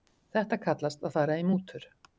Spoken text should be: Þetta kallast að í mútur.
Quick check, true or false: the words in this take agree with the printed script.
false